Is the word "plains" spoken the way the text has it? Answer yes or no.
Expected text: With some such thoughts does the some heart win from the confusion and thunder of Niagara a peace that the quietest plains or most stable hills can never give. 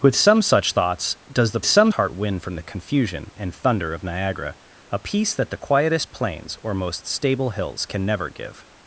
yes